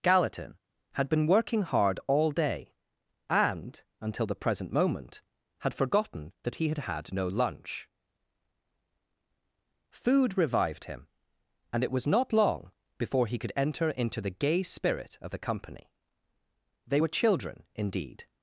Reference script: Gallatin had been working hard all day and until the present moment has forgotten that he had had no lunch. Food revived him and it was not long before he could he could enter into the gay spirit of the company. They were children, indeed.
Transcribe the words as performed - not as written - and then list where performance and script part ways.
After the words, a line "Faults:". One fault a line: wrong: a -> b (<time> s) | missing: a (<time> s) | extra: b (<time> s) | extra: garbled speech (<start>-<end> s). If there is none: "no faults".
Gallatin had been working hard all day and until the present moment had forgotten that he had had no lunch. Food revived him and it was not long before he could enter into the gay spirit of the company. They were children, indeed.
Faults:
wrong: has -> had (5.6 s)
missing: he could (13.5 s)